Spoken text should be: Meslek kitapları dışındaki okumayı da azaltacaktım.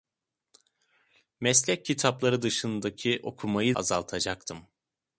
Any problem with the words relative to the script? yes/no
yes